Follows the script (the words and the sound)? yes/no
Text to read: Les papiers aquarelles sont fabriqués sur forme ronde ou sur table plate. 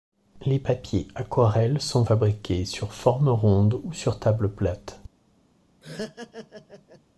no